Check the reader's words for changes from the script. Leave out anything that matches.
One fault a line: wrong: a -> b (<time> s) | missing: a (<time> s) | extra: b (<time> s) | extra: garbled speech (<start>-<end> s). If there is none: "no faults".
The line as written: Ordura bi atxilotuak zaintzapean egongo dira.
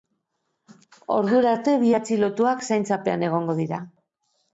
extra: arte (1.5 s)